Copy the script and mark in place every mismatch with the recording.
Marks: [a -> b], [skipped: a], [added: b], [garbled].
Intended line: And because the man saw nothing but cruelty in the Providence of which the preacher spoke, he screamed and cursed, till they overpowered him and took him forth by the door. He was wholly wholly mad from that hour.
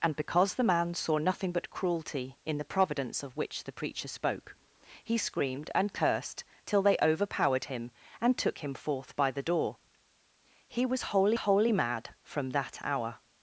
And because the man saw nothing but cruelty in the Providence of which the preacher spoke, he screamed and cursed, till they overpowered him and took him forth by the door. He was wholly wholly mad from that hour.